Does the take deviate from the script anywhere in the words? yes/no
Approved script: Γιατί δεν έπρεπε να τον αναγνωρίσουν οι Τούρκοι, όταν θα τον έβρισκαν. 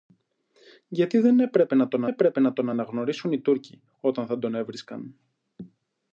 yes